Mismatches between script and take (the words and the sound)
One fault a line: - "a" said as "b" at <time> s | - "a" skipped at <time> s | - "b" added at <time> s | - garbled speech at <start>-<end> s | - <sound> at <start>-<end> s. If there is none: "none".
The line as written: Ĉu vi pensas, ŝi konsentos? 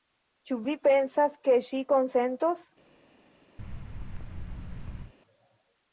- "ke" added at 1.5 s
- thud at 3.6-5.1 s